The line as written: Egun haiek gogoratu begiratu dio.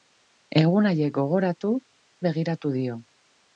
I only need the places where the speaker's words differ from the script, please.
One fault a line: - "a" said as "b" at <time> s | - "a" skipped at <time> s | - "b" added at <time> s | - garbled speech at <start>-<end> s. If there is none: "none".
none